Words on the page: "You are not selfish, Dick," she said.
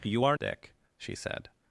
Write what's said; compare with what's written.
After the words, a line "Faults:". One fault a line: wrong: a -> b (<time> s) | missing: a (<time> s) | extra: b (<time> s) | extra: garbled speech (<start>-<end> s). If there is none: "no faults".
"You are Dick," she said.
Faults:
missing: not selfish (0.4 s)